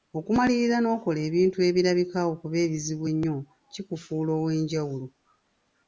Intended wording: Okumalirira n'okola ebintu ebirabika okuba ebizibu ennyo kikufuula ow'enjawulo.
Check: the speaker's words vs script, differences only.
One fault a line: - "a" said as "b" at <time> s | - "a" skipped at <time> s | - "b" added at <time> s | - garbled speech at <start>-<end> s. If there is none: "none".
none